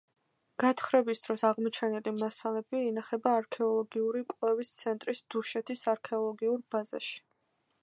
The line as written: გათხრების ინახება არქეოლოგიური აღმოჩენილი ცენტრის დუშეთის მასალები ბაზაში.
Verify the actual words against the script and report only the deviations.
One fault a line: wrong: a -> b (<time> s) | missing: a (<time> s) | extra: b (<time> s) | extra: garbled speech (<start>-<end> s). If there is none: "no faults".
extra: დროს აღმოჩენილი მასალები (1.2 s)
wrong: აღმოჩენილი -> კვლევის (4.4 s)
wrong: მასალები -> არქეოლოგიურ (6.0 s)